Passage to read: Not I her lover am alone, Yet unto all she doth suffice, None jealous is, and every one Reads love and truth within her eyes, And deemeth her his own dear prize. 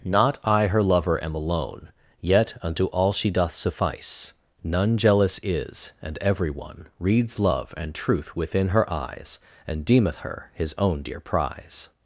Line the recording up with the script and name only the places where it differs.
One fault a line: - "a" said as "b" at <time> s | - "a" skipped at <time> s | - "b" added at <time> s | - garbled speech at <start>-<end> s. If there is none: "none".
none